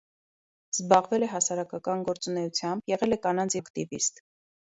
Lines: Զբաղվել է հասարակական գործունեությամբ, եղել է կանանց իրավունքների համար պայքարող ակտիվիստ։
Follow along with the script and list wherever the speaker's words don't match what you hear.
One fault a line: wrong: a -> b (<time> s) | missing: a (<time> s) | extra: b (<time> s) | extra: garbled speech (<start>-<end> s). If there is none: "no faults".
missing: իրավունքների համար պայքարող (3.6 s)